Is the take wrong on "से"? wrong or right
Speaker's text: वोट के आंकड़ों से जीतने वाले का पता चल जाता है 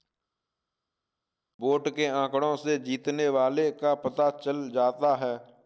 right